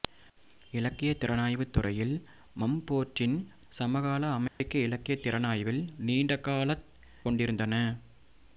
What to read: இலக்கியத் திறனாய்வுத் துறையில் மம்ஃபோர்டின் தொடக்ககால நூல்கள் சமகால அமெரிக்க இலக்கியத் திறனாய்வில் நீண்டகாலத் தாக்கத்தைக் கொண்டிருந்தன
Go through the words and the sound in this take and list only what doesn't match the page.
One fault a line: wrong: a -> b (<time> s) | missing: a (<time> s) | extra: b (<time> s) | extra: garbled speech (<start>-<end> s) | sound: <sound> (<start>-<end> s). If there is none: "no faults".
missing: தொடக்ககால நூல்கள் (3.4 s)
sound: dropout (4.5-4.6 s)
missing: தாக்கத்தைக் (6.9 s)